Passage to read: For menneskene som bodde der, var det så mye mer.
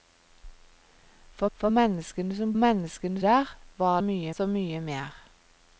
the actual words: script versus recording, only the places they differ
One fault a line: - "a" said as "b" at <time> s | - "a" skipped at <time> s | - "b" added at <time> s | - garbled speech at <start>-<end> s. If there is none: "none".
- "for" added at 1.5 s
- "bodde" said as "menneskene" at 2.5 s
- "det" said as "mye" at 4.0 s